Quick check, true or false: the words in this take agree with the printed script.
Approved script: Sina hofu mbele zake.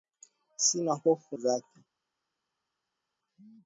false